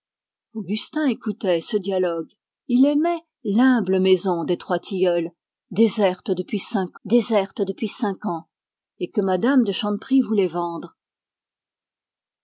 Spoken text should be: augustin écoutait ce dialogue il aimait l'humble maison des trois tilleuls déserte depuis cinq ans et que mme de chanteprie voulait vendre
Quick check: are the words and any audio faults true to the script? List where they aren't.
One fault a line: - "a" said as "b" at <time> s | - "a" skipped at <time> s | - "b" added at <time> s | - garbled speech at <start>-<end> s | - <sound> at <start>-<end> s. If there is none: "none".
- "déserte depuis cinq" added at 7.0 s